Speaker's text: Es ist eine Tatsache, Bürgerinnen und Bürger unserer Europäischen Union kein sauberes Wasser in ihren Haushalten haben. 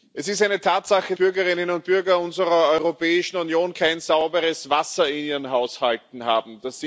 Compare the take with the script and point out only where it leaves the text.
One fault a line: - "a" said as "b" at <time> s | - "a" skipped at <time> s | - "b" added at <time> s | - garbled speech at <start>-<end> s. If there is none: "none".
none